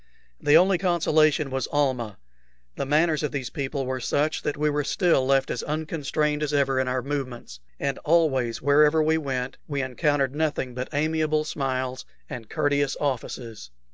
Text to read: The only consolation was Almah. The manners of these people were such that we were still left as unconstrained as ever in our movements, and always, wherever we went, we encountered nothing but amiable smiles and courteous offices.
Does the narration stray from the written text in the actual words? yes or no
no